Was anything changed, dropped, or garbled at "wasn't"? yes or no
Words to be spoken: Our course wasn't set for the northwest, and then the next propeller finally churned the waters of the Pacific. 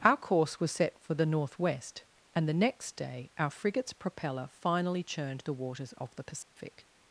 yes